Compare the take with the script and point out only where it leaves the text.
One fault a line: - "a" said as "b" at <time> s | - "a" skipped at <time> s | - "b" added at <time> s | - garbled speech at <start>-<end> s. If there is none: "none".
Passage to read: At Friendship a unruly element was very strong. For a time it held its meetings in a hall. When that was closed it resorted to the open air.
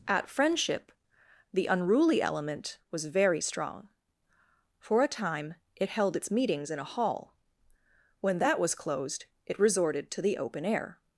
- "a" said as "the" at 1.5 s